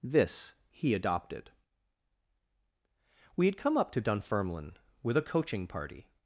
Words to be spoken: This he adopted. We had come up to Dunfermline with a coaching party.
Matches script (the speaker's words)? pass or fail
pass